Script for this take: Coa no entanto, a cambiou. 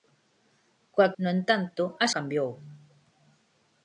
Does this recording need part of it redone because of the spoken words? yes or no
no